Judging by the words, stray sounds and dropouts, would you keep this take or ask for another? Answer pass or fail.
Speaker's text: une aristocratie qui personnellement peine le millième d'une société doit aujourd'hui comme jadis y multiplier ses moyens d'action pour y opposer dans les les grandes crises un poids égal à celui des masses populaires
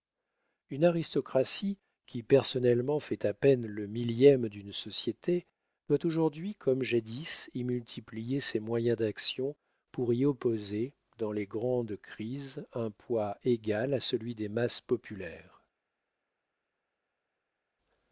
fail